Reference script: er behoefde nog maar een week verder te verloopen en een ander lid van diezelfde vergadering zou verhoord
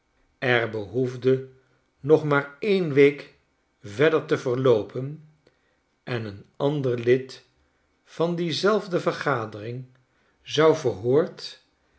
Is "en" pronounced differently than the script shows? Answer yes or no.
no